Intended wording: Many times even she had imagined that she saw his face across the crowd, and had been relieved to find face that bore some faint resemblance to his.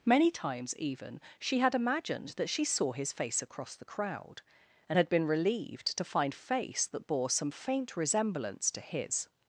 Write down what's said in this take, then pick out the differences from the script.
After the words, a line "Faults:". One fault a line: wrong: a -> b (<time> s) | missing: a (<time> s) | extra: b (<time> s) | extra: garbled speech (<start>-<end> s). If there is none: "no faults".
Many times even she had imagined that she saw his face across the crowd, and had been relieved to find face that bore some faint resemblance to his.
Faults:
no faults